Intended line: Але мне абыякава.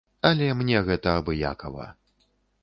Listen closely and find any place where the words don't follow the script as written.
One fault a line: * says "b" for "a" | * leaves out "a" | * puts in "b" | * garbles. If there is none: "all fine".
* puts in "гэта"